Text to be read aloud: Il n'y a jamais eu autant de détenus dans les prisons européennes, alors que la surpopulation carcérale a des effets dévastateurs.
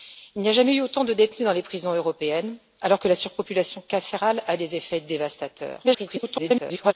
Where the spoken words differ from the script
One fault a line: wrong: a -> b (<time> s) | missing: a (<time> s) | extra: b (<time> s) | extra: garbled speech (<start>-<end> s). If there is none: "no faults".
extra: garbled speech (5.8-6.9 s)